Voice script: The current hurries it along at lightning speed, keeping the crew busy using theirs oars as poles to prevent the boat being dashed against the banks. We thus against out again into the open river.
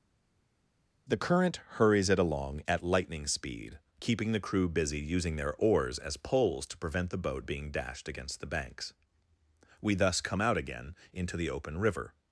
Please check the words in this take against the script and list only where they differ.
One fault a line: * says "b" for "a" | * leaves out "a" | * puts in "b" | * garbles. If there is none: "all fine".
* says "their" for "theirs"
* says "come" for "against"